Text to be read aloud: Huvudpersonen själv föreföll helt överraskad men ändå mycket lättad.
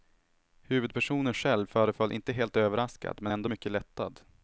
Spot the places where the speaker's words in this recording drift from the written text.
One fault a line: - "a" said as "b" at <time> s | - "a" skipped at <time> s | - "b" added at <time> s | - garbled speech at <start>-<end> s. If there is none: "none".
- "inte" added at 2.1 s